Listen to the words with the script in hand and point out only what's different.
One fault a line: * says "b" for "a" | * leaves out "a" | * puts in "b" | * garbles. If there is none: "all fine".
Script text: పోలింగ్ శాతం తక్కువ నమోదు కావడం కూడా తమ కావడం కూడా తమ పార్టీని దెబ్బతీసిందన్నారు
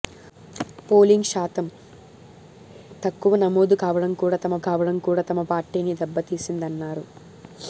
all fine